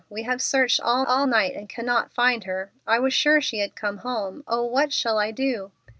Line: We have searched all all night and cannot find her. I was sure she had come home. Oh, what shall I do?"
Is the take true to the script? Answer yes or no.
yes